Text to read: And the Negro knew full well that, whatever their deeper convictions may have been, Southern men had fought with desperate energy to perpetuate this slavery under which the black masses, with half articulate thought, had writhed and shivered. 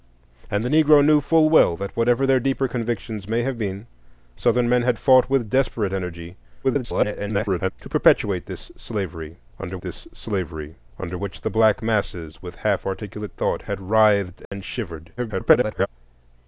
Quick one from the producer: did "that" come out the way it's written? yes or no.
yes